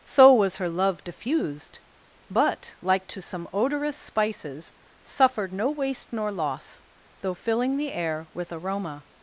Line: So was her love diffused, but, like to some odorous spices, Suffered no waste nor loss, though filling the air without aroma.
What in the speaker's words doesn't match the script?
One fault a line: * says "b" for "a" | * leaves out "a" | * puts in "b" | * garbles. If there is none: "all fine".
* says "with" for "without"